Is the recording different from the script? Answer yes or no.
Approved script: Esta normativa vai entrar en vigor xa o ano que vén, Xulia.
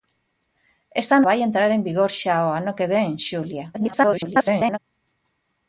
yes